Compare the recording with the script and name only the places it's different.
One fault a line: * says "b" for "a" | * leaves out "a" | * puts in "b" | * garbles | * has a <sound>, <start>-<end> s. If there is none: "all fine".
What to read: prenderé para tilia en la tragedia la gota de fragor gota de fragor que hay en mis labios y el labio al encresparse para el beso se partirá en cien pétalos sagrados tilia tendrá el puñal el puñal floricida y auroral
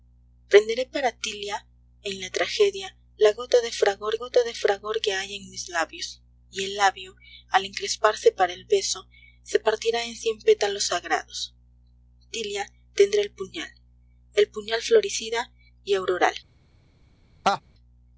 * has a laugh, 17.4-17.6 s